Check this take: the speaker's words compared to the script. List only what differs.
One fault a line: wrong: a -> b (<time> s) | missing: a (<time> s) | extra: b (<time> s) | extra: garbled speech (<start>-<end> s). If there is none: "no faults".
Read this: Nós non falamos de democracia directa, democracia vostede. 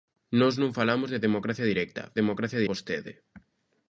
no faults